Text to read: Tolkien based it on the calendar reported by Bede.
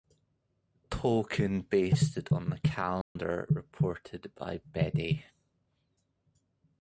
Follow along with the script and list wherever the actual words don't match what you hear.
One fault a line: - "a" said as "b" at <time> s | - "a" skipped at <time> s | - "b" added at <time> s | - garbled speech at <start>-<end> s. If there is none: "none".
none